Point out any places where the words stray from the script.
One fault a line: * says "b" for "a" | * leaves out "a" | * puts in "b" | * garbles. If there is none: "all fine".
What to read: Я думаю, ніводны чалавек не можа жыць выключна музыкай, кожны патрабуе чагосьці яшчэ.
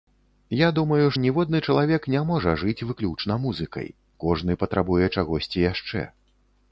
all fine